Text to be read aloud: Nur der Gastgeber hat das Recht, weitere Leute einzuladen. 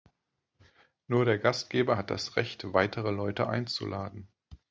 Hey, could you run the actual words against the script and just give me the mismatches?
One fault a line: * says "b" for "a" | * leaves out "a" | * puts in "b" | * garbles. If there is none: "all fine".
all fine